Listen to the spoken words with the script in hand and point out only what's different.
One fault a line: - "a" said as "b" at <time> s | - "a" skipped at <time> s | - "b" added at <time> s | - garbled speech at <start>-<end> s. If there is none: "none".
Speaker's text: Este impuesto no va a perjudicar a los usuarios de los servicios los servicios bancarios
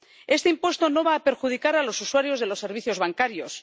- "los servicios" skipped at 3.0 s